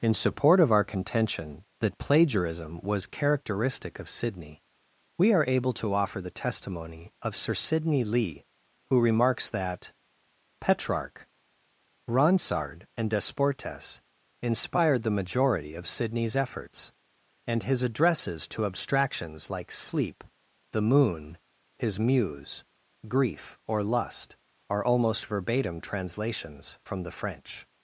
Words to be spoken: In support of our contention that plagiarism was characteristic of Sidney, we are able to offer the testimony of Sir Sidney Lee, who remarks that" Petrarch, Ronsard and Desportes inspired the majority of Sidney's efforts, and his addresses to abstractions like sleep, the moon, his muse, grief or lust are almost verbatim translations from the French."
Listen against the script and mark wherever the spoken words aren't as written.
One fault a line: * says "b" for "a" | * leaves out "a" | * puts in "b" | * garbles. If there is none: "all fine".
all fine